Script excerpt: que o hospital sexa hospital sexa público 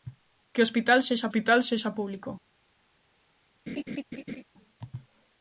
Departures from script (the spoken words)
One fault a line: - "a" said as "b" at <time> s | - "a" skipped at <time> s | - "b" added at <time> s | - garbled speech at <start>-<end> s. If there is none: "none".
none